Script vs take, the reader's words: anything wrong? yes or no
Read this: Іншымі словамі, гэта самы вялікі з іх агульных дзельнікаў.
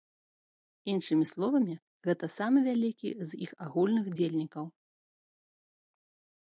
no